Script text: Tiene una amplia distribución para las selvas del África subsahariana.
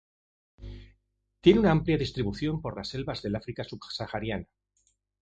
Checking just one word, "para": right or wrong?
wrong